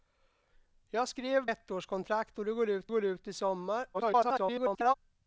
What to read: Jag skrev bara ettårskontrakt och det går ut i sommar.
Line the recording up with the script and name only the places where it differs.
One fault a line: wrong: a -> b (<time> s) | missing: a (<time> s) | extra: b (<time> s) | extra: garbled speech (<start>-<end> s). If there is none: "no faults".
missing: bara (1.5 s)
extra: går ut (2.9 s)
extra: garbled speech (3.9-4.9 s)